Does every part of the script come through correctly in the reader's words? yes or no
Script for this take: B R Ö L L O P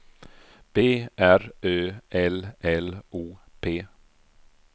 yes